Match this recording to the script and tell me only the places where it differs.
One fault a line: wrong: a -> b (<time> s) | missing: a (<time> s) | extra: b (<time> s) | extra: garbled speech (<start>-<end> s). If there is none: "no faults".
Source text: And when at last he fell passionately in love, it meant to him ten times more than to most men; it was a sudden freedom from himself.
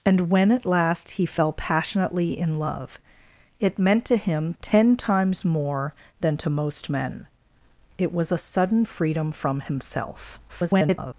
extra: garbled speech (10.5-11.1 s)